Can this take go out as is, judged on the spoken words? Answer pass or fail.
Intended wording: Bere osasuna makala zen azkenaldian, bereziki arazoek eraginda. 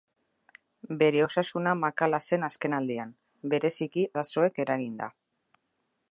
pass